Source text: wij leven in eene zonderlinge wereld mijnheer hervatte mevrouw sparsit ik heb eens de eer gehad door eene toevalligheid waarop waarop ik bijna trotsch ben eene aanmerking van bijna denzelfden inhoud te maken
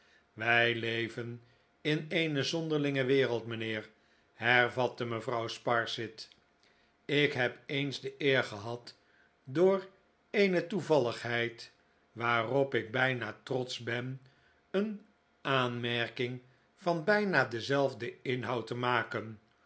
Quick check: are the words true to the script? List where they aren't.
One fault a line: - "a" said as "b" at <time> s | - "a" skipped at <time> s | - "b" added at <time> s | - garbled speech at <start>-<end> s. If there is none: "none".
- "waarop" skipped at 12.7 s